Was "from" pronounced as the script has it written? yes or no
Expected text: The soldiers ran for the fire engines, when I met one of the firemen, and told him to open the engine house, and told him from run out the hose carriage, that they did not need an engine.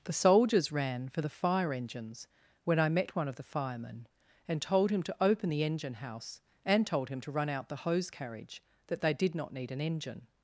no